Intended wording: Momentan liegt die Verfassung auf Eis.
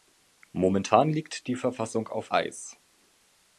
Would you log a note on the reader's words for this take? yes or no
no